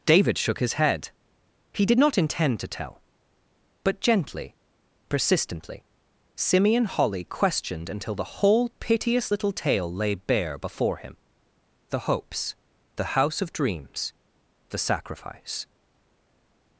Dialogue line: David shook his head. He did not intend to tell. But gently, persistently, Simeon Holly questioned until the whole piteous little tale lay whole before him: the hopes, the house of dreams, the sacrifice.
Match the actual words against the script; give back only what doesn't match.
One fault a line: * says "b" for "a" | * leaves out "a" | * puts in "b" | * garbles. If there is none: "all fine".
* says "bare" for "whole"